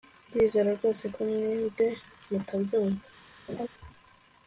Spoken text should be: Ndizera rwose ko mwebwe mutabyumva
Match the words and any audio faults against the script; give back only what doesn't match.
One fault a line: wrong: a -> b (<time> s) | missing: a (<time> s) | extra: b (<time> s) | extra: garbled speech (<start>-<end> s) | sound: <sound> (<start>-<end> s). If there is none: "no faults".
sound: laugh (3.5-3.7 s)